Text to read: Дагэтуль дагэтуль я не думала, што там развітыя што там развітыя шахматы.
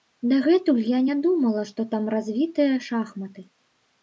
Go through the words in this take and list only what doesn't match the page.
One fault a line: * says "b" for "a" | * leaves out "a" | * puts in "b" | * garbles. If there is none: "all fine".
* leaves out "дагэтуль"
* leaves out "што там развітыя"